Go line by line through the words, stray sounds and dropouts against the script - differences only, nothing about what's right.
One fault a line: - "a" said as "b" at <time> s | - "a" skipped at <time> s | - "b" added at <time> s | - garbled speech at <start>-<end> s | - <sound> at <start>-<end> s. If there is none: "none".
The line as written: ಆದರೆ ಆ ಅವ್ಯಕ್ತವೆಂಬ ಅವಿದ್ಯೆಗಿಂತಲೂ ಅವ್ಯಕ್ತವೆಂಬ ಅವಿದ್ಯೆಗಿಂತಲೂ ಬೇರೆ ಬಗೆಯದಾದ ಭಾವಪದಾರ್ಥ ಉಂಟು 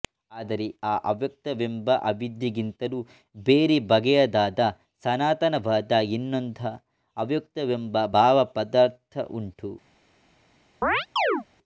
- "ಅವ್ಯಕ್ತವೆಂಬ ಅವಿದ್ಯೆಗಿಂತಲೂ ಬೇರೆ ಬಗೆಯದಾದ" said as "ಬೇರೆ ಬಗೆಯದಾದ ಸನಾತನವಾದ ಇನ್ನೊಂದ ಅವ್ಯಕ್ತವೆಂಬ" at 3.4 s
- chirp at 10.8-11.4 s